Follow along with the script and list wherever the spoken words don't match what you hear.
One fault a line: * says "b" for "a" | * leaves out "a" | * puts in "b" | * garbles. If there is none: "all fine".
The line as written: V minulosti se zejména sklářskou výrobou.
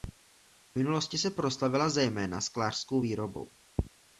* puts in "proslavila"